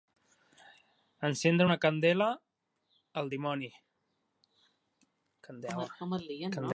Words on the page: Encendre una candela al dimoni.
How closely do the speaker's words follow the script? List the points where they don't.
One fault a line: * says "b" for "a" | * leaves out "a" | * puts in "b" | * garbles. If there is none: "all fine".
all fine